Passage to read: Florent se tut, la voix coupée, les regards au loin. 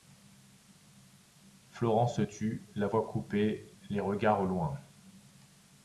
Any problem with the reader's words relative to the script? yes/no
no